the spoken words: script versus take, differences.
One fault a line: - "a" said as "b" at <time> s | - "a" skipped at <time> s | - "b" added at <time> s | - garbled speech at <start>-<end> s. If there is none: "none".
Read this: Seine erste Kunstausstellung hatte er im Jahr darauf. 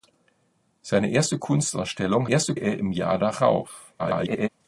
- "hatte" said as "erste" at 2.3 s
- garbled speech at 4.0-4.5 s